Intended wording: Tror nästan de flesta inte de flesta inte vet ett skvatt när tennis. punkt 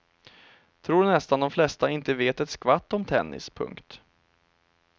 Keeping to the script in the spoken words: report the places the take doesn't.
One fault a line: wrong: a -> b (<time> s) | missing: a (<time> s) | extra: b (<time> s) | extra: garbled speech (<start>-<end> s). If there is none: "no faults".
missing: de flesta inte (2.1 s)
wrong: när -> om (2.9 s)